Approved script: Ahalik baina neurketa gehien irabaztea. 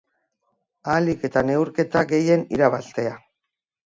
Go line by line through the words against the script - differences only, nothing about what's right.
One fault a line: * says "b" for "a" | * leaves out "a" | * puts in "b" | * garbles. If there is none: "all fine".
* says "eta" for "baina"